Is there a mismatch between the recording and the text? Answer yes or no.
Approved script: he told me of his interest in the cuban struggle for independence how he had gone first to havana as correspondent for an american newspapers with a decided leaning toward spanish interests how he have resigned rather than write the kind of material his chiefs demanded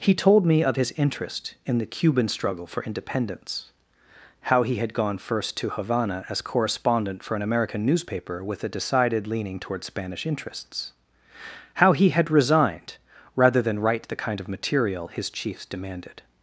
yes